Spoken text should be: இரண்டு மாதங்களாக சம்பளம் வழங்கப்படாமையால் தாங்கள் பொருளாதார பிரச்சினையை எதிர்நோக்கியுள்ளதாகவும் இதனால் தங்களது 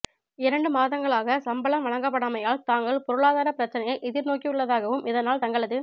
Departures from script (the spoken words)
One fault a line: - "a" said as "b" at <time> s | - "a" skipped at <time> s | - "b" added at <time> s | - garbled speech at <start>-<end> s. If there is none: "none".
none